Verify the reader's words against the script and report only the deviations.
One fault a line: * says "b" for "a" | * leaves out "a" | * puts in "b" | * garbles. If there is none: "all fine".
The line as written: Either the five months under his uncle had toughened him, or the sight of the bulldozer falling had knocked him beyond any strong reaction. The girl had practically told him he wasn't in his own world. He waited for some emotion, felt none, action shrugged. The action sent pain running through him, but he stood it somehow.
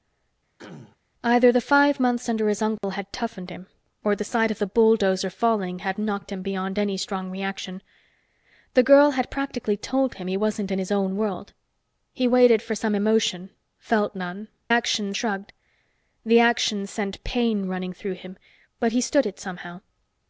all fine